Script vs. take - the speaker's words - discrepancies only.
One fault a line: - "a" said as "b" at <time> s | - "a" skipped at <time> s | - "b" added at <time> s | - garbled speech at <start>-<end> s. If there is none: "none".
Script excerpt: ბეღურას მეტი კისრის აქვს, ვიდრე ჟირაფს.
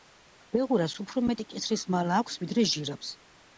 - "უფრო" added at 1.0 s
- "მალა" added at 2.0 s